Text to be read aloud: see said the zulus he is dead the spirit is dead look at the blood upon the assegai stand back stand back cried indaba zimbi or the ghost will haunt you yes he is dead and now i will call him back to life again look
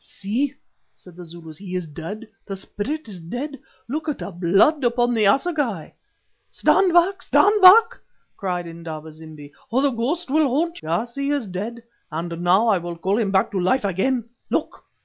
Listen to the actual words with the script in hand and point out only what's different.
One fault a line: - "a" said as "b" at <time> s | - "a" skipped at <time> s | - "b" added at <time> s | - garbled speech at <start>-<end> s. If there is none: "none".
- "you" skipped at 10.8 s